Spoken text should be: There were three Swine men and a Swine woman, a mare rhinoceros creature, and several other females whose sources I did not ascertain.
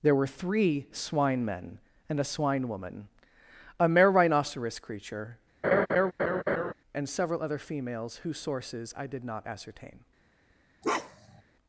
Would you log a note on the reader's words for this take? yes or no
no